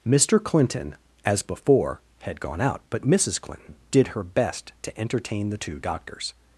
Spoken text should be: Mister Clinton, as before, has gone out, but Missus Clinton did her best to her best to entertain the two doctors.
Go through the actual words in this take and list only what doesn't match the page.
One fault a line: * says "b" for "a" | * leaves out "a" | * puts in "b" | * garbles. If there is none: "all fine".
* says "had" for "has"
* leaves out "her best to"